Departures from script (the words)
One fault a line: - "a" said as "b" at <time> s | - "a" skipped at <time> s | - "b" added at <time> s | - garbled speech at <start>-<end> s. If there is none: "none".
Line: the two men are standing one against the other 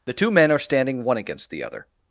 none